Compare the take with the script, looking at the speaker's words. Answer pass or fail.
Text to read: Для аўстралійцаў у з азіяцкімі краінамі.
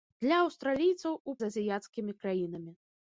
pass